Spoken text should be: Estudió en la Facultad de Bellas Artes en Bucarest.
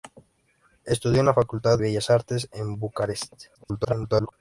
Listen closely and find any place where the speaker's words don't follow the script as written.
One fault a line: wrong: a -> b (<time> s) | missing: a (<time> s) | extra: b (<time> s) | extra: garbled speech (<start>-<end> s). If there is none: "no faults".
missing: de (1.8 s)
extra: garbled speech (3.5-4.3 s)